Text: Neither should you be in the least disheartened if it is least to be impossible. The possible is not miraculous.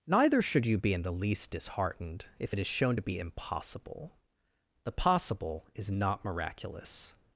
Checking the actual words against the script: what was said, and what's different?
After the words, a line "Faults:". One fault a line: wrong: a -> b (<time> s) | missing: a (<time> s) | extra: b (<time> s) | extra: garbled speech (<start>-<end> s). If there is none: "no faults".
Neither should you be in the least disheartened if it is shown to be impossible. The possible is not miraculous.
Faults:
wrong: least -> shown (2.7 s)